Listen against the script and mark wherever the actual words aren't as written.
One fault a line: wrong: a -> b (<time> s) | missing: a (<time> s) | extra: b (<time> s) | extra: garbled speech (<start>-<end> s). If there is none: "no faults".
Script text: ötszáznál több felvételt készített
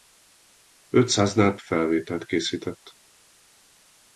missing: több (1.6 s)